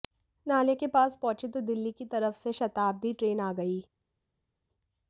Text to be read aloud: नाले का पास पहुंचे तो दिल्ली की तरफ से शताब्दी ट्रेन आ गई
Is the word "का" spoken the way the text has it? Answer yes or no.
no